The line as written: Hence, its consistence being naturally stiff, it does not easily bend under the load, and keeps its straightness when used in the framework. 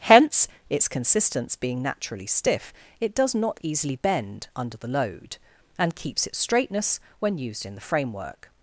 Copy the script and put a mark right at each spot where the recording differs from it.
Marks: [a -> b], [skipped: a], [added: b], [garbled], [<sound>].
Hence, its consistence being naturally stiff, it does not easily bend under the load, and keeps its straightness when used in the framework.